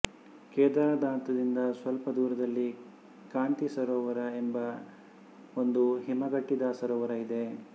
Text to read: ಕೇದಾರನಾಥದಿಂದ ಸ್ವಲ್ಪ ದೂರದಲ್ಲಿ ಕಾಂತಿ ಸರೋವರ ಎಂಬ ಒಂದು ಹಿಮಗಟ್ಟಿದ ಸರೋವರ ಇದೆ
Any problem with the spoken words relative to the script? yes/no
no